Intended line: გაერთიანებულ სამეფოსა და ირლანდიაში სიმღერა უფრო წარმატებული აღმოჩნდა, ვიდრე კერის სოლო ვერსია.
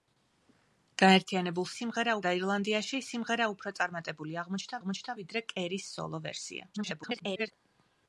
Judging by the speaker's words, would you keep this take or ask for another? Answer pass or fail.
fail